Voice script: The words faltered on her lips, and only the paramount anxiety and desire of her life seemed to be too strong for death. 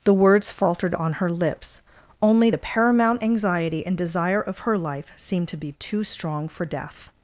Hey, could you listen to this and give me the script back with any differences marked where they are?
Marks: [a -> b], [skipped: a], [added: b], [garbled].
The words faltered on her lips, [skipped: and] only the paramount anxiety and desire of her life seemed to be too strong for death.